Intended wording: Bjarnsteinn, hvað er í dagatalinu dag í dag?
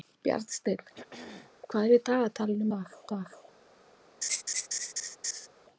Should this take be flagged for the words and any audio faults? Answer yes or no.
yes